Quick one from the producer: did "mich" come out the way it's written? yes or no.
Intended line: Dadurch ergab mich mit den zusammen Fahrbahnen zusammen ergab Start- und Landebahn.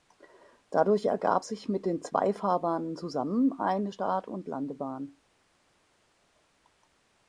no